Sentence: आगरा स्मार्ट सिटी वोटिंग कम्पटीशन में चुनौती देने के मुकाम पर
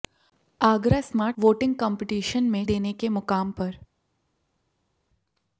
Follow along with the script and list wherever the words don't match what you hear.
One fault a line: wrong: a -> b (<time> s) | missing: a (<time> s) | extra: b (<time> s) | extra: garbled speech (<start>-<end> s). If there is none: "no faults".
missing: सिटी (1.4 s)
missing: चुनौती (2.6 s)